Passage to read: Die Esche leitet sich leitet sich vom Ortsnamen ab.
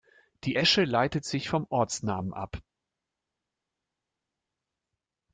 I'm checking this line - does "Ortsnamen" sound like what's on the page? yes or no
yes